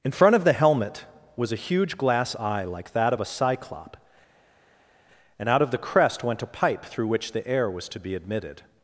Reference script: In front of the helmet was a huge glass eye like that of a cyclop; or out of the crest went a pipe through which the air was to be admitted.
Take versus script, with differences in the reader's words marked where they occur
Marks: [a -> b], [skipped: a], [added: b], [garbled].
In front of the helmet was a huge glass eye like that of a cyclop; [or -> and] out of the crest went a pipe through which the air was to be admitted.